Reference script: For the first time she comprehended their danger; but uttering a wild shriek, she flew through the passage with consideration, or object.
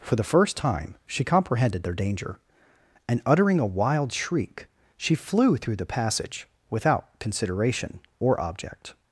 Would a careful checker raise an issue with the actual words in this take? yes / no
yes